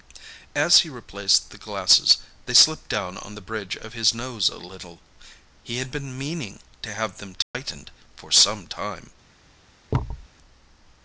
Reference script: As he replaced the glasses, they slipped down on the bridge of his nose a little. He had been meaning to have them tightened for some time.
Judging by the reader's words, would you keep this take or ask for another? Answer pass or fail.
pass